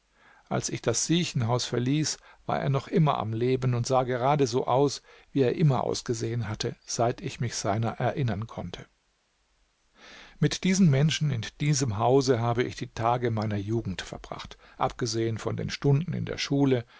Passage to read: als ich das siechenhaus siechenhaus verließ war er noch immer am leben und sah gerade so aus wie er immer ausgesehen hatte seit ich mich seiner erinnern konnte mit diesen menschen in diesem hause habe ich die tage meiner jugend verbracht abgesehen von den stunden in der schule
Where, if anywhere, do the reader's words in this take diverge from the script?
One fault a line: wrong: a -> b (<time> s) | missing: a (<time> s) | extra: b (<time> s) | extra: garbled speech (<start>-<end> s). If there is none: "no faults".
missing: siechenhaus (1.6 s)